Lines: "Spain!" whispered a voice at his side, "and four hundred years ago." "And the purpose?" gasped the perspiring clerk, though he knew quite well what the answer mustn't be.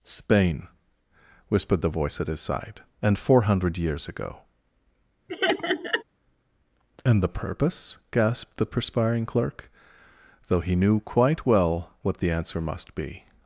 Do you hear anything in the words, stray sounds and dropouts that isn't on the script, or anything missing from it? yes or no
yes